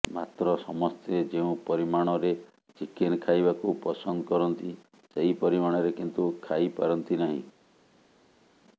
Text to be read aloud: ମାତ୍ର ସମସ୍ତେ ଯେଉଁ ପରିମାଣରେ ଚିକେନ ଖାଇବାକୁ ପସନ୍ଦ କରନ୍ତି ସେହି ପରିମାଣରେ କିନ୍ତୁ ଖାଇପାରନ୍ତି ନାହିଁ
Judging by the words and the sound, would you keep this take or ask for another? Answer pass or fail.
pass